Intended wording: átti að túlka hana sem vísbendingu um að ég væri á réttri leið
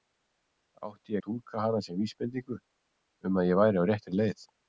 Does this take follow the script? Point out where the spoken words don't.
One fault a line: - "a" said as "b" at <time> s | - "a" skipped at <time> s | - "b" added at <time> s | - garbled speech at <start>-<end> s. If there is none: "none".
none